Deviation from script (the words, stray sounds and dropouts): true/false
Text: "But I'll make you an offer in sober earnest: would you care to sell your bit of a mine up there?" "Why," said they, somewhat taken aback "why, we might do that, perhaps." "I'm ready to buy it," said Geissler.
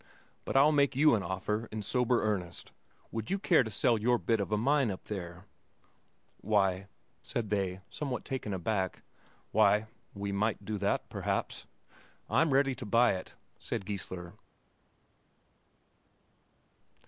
false